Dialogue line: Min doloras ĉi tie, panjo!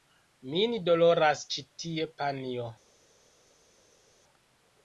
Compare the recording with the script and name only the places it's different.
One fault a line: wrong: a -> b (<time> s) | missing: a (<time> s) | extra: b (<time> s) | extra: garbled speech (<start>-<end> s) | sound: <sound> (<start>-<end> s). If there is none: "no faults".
no faults